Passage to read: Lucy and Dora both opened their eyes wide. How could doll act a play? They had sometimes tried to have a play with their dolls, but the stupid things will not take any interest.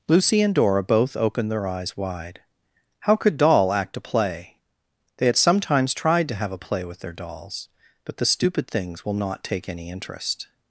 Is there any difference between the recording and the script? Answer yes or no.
no